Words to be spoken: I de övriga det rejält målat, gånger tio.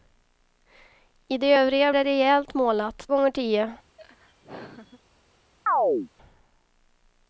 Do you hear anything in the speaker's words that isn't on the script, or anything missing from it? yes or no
no